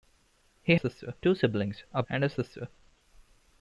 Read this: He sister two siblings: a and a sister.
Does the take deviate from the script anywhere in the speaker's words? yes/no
no